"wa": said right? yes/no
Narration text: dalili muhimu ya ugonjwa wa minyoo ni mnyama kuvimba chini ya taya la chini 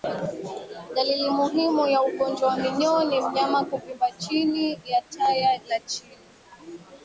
yes